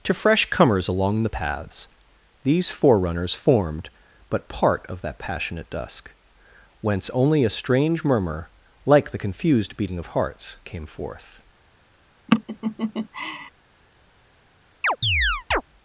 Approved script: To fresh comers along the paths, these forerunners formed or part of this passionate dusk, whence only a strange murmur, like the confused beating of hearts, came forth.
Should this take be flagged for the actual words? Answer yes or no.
yes